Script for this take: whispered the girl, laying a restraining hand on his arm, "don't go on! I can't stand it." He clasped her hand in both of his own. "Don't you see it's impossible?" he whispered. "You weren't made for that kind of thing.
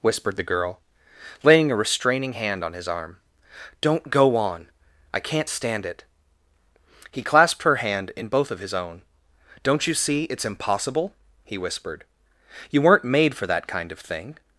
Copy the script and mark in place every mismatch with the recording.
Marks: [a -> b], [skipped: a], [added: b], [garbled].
whispered the girl, laying a restraining hand on his arm, "don't go on! I can't stand it." He clasped her hand in both of his own. "Don't you see it's impossible?" he whispered. "You weren't made for that kind of thing.